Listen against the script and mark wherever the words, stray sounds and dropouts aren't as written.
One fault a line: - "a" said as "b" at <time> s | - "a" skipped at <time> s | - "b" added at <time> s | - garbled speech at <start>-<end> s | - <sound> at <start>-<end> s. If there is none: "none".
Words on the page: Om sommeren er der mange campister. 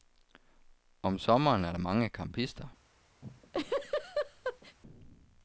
- laugh at 3.2-4.8 s